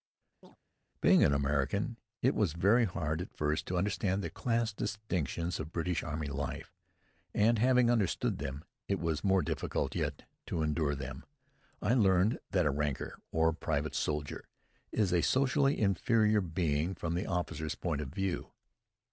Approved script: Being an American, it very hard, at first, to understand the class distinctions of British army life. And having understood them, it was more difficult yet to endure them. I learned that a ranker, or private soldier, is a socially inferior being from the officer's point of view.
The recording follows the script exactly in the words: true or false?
false